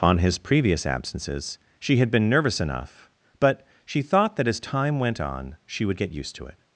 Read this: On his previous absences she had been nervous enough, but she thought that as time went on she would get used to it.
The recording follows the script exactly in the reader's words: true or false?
true